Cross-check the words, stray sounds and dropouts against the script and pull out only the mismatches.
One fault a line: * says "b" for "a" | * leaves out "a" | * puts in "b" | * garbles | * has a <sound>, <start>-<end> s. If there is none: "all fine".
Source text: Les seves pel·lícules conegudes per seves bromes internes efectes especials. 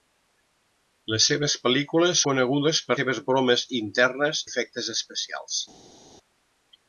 all fine